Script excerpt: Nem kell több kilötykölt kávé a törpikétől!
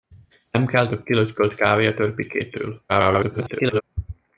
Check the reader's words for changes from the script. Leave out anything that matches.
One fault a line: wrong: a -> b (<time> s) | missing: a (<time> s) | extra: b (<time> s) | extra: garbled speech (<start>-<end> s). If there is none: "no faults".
extra: garbled speech (2.9-3.8 s)